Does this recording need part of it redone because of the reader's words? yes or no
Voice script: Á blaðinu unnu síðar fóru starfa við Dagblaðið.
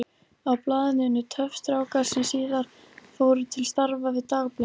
yes